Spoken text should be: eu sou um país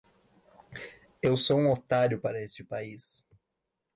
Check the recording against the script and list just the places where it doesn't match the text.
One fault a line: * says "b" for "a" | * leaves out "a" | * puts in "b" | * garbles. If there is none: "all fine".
* puts in "otário para este"